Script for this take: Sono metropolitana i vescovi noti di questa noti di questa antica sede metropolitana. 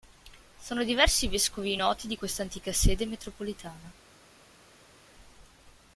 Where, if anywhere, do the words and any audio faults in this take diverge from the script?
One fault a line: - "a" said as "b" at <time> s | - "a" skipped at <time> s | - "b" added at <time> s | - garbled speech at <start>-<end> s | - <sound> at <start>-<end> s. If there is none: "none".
- "metropolitana" said as "diversi" at 0.8 s
- "noti di questa" skipped at 2.4 s